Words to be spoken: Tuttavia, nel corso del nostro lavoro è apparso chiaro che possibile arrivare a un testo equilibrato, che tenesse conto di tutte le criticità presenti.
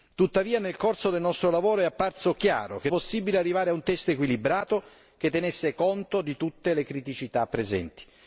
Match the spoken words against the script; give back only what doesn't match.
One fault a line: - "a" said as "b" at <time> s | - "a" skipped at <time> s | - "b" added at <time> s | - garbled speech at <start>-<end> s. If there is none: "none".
none